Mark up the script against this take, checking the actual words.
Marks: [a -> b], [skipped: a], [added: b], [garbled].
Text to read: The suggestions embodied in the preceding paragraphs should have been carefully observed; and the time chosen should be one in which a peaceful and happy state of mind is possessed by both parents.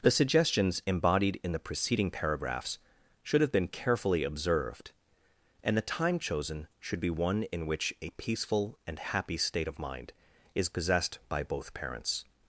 The suggestions embodied in the preceding paragraphs should have been carefully observed; and the time chosen should be one in which a peaceful and happy state of mind is possessed by both parents.